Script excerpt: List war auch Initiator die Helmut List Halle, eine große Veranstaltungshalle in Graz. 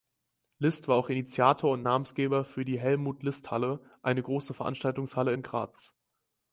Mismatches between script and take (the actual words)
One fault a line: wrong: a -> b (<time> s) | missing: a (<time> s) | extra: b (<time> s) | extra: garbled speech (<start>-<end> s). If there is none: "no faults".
extra: und Namensgeber für (1.7 s)